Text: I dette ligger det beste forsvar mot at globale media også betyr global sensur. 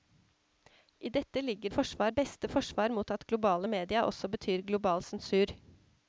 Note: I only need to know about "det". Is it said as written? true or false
false